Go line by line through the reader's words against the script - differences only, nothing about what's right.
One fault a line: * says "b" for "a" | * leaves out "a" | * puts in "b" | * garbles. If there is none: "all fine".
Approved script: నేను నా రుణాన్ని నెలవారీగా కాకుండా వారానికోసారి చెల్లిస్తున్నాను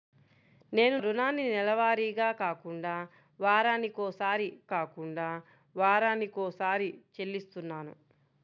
* leaves out "నా"
* puts in "కాకుండా వారానికోసారి"